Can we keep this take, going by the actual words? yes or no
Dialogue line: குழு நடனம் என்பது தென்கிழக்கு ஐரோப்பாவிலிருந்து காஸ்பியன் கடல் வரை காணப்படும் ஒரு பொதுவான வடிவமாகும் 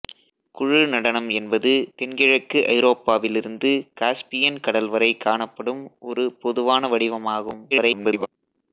no